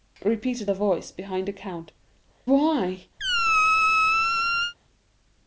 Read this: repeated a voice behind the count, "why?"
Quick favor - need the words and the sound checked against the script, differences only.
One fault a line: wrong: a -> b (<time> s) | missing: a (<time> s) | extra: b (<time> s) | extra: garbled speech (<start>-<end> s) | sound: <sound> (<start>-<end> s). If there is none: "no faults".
sound: squeak (3.2-4.7 s)